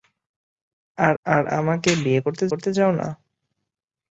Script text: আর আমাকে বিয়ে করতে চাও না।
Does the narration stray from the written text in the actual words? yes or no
yes